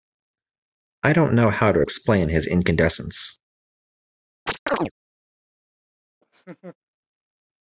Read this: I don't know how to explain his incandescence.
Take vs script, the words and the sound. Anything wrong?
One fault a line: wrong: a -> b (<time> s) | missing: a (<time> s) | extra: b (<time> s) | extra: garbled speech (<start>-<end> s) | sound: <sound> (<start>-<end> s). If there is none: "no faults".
sound: chirp (4.5-4.9 s)
sound: laugh (6.2-6.8 s)